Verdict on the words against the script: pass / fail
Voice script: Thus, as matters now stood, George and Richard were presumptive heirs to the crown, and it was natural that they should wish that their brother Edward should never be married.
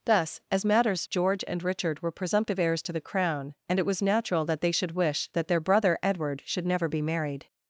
fail